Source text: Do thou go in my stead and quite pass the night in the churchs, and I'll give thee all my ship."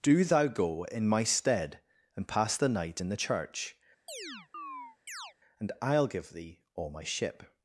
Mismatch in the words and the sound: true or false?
true